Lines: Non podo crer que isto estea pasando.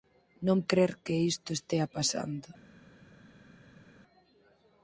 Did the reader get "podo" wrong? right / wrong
wrong